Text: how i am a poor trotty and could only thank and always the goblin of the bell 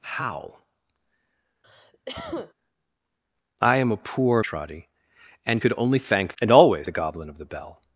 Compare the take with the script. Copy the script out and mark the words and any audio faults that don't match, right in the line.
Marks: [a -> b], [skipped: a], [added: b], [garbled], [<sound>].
how [cough] i am a poor trotty and could only thank and always the goblin of the bell